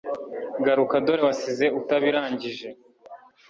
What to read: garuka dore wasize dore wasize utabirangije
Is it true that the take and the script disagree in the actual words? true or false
true